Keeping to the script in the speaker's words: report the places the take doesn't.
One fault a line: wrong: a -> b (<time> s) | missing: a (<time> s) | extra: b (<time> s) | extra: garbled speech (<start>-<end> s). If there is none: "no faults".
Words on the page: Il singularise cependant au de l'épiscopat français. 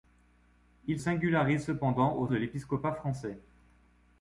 no faults